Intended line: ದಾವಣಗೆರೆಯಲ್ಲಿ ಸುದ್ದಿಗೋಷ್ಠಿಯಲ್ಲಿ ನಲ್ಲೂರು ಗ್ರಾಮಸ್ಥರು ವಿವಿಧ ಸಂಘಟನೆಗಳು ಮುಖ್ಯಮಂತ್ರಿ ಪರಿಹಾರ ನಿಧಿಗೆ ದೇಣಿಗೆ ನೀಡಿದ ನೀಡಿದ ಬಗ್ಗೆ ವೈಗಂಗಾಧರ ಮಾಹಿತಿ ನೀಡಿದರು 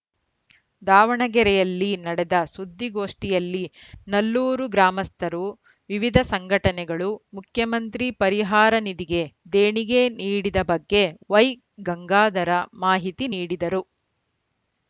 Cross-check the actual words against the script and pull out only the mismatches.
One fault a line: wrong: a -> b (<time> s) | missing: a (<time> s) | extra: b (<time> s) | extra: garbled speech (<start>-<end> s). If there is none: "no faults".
extra: ನಡೆದ (2.0 s)
missing: ನೀಡಿದ (10.6 s)